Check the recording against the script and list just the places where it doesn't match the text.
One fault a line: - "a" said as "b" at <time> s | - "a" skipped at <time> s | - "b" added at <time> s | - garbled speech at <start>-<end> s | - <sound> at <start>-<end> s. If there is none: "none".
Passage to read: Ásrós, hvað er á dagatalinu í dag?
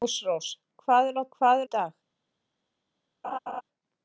- "dagatalinu" said as "hvað" at 1.4 s
- laugh at 3.2-3.6 s